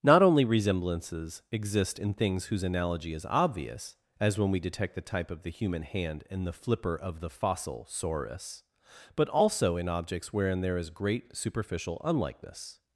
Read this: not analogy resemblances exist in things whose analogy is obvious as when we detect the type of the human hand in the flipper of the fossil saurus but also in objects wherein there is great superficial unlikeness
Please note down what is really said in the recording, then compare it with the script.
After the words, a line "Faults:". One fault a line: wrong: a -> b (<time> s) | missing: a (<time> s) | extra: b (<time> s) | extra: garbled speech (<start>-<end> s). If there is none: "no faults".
not only resemblances exist in things whose analogy is obvious as when we detect the type of the human hand in the flipper of the fossil saurus but also in objects wherein there is great superficial unlikeness
Faults:
wrong: analogy -> only (0.2 s)